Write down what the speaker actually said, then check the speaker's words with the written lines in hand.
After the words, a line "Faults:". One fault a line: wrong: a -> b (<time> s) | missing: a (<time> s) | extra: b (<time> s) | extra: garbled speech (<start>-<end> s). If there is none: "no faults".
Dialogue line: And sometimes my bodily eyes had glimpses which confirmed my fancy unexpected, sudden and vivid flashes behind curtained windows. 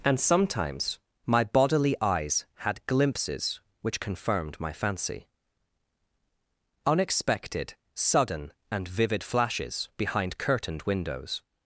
And sometimes my bodily eyes had glimpses which confirmed my fancy unexpected, sudden and vivid flashes behind curtained windows.
Faults:
no faults